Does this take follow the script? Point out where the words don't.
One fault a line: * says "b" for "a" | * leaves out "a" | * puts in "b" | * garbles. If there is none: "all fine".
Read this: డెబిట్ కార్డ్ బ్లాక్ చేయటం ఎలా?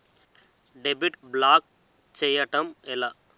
* leaves out "కార్డ్"